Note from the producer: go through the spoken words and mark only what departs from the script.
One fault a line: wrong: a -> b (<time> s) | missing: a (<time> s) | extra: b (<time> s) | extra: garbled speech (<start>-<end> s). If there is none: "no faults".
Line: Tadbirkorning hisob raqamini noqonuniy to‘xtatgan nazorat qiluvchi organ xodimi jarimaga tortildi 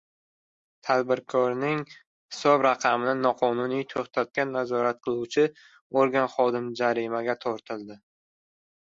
no faults